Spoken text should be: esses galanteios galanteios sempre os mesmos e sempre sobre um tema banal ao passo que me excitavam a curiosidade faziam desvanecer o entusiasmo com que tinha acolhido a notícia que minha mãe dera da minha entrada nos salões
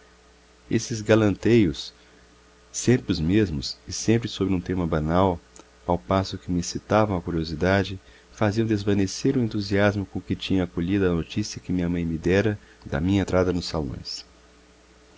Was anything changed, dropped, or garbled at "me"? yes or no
no